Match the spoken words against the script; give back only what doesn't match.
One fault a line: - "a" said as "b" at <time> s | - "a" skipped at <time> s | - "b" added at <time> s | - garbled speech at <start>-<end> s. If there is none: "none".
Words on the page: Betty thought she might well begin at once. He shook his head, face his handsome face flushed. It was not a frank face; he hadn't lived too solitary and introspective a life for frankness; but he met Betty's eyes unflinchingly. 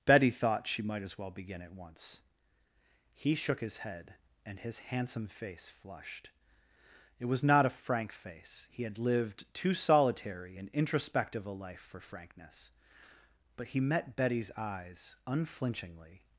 - "as" added at 1.0 s
- "face" said as "and" at 4.5 s
- "hadn't" said as "had" at 8.8 s